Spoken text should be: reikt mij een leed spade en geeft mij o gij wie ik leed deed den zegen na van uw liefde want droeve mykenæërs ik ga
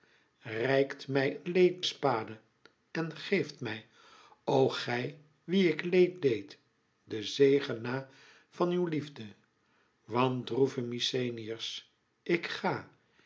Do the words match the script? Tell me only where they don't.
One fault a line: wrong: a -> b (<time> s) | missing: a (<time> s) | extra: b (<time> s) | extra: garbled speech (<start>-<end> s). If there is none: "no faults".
no faults